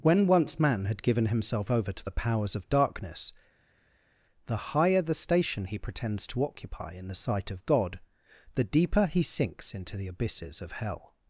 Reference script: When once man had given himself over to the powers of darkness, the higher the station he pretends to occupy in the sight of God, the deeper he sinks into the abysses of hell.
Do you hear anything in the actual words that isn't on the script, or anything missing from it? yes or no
no